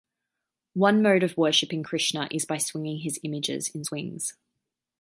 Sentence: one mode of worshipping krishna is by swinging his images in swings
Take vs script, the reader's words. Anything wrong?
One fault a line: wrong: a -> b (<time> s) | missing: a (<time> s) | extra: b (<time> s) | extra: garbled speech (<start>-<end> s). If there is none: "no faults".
no faults